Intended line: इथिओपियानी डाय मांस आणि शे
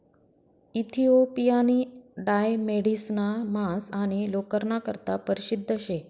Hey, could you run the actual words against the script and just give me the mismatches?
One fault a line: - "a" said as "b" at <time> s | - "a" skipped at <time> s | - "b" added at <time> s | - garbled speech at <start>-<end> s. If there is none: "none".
- "मेढिसना" added at 2.6 s
- "लोकरना करता परशिद्ध" added at 4.3 s